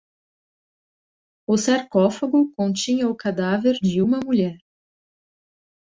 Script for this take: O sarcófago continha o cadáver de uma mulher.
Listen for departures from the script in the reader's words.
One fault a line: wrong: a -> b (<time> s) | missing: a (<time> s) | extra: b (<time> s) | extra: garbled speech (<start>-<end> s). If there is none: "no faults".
no faults